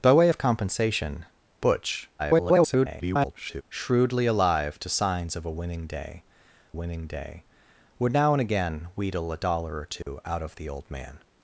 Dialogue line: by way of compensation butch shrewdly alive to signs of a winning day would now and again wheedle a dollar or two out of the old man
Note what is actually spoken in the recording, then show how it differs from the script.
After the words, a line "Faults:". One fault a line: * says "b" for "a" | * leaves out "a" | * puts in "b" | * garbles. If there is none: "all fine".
by way of compensation butch [garbled] shrewdly alive to signs of a winning day winning day would now and again wheedle a dollar or two out of the old man
Faults:
* garbles
* puts in "winning day"